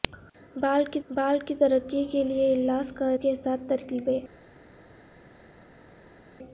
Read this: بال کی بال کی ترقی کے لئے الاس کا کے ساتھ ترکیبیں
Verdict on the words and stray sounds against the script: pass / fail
pass